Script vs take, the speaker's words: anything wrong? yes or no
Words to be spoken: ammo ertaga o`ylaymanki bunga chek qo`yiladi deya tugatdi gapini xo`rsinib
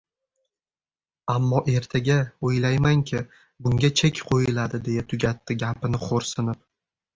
no